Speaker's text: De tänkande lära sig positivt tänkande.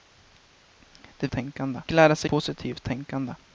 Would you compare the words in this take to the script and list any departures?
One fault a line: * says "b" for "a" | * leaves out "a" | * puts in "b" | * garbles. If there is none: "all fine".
all fine